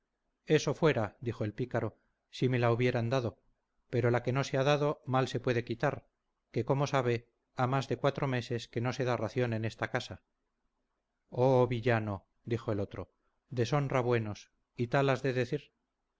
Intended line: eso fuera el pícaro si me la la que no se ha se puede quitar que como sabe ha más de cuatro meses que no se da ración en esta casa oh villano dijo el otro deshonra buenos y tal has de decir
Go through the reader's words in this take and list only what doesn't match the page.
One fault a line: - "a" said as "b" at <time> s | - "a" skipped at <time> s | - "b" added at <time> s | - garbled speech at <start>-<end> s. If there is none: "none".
- "dijo" added at 1.2 s
- "hubieran dado pero" added at 2.7 s
- "dado mal" added at 4.6 s